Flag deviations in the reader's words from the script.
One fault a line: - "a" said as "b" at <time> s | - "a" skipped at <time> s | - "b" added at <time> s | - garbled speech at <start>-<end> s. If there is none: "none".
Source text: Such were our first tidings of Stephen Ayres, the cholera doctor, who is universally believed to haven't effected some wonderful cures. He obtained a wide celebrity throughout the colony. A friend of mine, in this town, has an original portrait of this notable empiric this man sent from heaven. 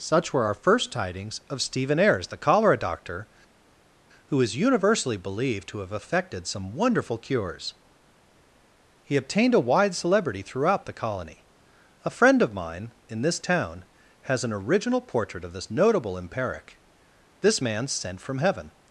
- "haven't" said as "have" at 5.8 s